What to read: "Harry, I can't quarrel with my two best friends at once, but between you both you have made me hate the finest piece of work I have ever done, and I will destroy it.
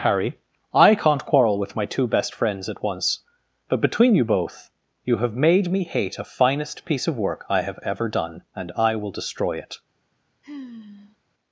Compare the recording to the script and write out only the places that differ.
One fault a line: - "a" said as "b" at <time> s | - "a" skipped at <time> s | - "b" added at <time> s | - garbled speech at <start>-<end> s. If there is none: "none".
- "the" said as "a" at 6.2 s